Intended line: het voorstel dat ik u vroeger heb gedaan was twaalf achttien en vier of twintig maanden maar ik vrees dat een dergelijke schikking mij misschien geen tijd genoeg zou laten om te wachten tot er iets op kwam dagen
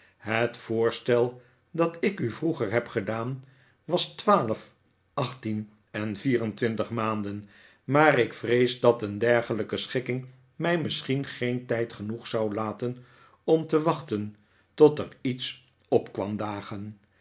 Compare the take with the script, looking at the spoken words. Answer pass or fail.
fail